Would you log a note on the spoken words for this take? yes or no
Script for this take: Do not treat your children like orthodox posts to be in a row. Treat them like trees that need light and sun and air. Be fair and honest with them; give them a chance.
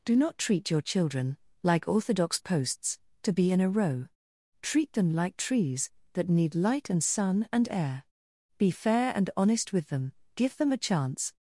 no